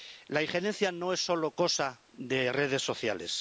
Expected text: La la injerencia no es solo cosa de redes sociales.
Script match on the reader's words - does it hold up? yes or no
no